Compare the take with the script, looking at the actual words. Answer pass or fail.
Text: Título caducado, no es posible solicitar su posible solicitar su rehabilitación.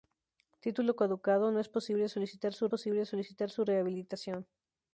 pass